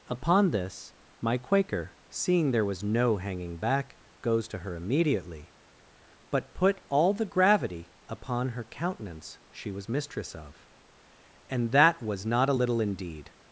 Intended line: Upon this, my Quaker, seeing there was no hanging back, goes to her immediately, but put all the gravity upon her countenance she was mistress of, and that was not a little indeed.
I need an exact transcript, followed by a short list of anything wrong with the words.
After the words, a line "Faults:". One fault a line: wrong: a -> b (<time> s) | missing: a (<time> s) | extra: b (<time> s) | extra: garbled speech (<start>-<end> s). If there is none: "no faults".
Upon this, my Quaker, seeing there was no hanging back, goes to her immediately, but put all the gravity upon her countenance she was mistress of, and that was not a little indeed.
Faults:
no faults